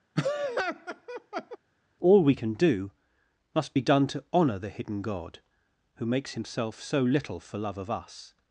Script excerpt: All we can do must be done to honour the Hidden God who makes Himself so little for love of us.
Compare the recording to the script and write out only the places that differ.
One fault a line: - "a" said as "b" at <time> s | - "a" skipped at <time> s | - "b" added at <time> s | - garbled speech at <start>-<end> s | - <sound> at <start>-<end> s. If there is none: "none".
- laugh at 0.1-1.6 s